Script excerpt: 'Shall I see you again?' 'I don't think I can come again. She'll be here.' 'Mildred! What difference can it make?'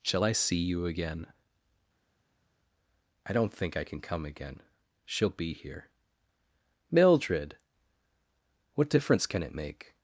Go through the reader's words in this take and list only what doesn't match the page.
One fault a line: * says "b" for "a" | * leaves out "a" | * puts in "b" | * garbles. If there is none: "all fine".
all fine